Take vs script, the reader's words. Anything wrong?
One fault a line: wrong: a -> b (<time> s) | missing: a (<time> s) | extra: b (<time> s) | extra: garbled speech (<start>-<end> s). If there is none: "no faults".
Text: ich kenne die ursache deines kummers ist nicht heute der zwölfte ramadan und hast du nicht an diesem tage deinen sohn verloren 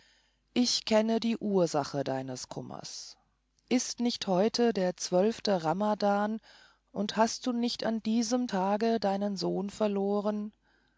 no faults